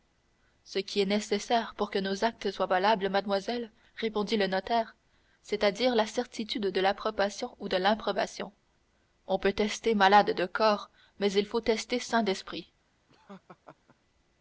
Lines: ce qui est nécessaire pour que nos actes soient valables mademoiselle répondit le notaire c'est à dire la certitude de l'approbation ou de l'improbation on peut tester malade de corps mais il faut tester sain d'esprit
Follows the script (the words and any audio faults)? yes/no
no